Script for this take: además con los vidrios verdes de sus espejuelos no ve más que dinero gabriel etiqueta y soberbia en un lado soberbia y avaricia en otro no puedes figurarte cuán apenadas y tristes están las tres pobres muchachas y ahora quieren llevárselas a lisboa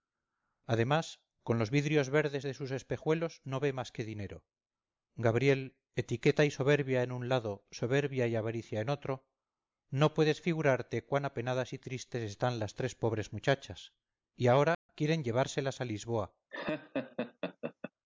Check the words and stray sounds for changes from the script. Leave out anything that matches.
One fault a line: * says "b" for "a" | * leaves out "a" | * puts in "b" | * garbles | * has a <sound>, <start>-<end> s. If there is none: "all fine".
* has a dropout, 14.7-14.9 s
* has a laugh, 16.5-17.9 s